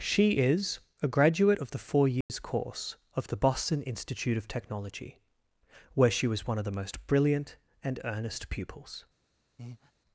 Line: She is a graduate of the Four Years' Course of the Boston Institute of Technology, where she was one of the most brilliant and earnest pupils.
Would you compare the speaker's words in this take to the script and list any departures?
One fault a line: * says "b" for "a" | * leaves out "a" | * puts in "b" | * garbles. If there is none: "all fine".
all fine